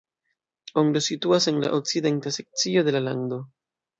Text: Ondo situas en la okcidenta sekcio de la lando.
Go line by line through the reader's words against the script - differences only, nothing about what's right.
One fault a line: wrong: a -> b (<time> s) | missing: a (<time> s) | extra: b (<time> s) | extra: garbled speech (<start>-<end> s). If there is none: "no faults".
no faults